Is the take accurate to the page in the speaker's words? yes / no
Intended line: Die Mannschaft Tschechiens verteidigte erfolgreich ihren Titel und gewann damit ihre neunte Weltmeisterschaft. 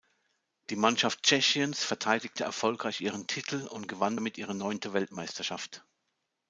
yes